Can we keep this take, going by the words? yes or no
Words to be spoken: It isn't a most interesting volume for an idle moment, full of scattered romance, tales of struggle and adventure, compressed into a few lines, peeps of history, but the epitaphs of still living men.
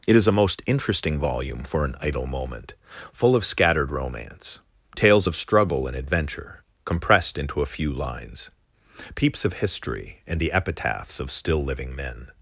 no